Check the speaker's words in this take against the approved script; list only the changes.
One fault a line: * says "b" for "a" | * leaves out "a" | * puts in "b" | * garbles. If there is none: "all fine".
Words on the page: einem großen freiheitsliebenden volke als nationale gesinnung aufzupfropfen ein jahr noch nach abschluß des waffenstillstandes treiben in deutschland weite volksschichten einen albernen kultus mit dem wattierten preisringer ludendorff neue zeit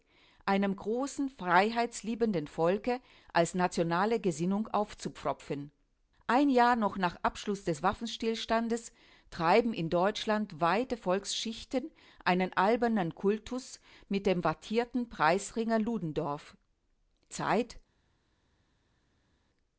* leaves out "neue"